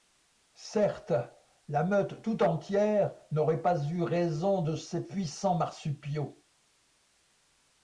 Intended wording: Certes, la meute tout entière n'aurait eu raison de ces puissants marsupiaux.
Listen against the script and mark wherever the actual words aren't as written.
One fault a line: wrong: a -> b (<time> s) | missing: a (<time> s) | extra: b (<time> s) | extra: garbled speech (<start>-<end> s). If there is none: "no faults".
extra: pas (3.6 s)